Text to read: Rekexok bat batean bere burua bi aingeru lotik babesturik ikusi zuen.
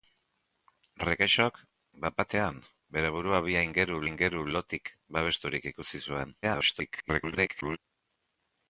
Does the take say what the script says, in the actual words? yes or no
no